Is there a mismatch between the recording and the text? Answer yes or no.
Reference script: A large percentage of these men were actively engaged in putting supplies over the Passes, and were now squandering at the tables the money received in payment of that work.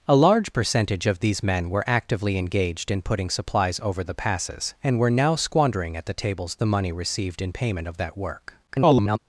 yes